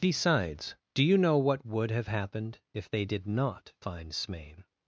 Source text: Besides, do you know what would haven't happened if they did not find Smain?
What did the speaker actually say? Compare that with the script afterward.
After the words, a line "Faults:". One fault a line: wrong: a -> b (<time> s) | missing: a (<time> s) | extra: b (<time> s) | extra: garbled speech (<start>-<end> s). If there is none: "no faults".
Besides, do you know what would have happened if they did not find Smain?
Faults:
wrong: haven't -> have (1.9 s)